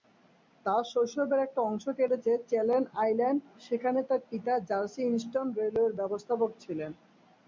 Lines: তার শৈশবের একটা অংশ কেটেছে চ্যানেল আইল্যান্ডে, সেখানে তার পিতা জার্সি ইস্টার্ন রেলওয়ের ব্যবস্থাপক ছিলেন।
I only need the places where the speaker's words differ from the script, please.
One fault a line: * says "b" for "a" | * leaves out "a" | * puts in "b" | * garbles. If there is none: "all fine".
all fine